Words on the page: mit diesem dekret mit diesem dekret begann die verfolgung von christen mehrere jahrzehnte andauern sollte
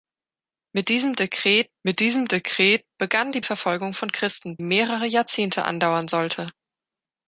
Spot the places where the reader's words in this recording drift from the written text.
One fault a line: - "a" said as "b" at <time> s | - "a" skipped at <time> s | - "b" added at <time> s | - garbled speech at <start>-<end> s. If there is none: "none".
none